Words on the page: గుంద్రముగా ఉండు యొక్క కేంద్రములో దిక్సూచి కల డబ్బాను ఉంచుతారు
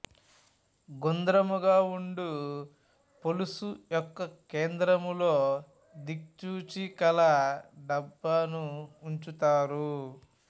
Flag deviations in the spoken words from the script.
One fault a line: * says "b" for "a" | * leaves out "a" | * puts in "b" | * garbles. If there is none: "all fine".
* puts in "పొలుసు"